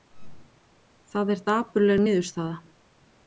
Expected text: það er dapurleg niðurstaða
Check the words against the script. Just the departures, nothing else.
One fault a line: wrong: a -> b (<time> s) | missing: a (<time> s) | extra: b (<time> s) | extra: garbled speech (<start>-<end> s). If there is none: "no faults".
no faults